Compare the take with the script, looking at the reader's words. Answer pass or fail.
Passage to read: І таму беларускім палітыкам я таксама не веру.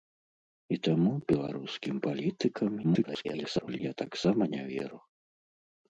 fail